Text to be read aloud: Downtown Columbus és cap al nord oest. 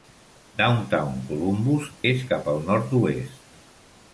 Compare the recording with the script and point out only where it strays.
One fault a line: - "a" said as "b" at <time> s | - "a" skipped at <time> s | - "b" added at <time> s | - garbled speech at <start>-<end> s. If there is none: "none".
none